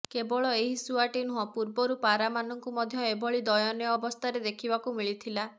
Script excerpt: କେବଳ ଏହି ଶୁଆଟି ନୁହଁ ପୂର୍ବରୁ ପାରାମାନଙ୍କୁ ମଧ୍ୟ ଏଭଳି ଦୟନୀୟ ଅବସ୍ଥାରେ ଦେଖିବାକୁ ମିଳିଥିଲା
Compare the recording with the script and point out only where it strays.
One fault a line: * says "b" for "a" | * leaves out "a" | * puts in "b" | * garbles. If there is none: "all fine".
all fine